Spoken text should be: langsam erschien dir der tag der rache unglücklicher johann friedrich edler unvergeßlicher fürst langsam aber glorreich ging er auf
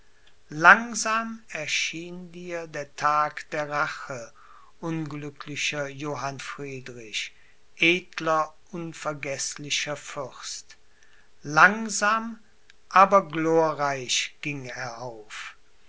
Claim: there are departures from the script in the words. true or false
false